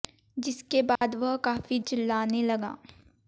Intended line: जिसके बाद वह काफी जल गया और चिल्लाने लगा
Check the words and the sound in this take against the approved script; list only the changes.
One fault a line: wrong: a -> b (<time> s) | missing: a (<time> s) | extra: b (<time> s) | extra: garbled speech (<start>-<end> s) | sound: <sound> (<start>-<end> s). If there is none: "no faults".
sound: dropout (1.0-1.0 s)
missing: जल गया और (1.8 s)